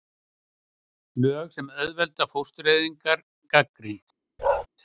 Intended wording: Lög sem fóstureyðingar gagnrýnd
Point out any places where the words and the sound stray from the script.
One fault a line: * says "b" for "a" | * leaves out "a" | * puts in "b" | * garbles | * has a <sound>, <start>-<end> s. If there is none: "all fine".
* puts in "auðvelda"
* has a bark, 4.4-4.7 s